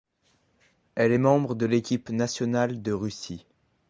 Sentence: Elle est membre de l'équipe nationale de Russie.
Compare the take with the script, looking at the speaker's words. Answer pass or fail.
pass